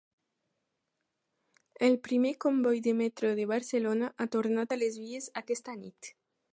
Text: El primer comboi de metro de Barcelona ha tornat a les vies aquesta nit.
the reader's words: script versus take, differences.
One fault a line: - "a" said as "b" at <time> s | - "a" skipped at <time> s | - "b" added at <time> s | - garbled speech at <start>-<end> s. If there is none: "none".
none